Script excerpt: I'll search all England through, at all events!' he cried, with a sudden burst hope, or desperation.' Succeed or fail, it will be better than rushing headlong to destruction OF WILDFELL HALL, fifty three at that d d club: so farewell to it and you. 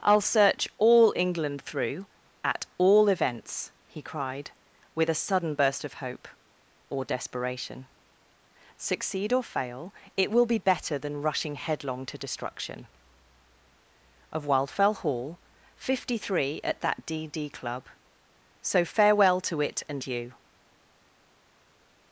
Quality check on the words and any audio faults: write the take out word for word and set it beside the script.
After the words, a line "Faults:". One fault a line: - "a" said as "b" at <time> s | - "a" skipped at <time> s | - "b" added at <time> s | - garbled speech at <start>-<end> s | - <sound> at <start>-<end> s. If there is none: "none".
I'll search all England through, at all events!' he cried, with a sudden burst of hope, or desperation.' Succeed or fail, it will be better than rushing headlong to destruction OF WILDFELL HALL, fifty three at that d d club: so farewell to it and you.
Faults:
- "of" added at 5.8 s